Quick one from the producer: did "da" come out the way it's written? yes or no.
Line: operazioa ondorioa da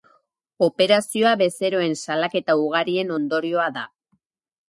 yes